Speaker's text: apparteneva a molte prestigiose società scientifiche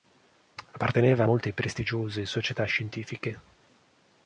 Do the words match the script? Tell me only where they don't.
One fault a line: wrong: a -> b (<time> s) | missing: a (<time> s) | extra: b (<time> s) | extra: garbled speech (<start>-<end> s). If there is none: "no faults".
no faults